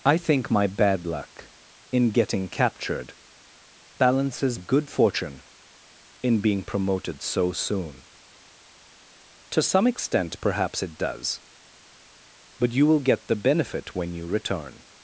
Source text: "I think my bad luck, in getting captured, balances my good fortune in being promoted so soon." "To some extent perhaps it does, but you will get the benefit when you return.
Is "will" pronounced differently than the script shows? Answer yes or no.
no